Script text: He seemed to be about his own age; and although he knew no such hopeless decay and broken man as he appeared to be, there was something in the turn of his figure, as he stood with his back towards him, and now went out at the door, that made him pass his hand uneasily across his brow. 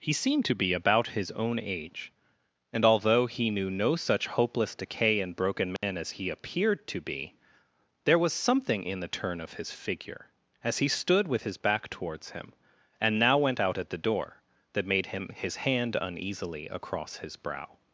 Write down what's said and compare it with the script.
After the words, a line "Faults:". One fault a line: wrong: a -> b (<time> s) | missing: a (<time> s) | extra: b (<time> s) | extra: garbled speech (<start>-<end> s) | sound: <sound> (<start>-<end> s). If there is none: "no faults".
He seemed to be about his own age; and although he knew no such hopeless decay and broken man as he appeared to be, there was something in the turn of his figure, as he stood with his back towards him, and now went out at the door, that made him his hand uneasily across his brow.
Faults:
sound: dropout (5.8-5.8 s)
missing: pass (15.3 s)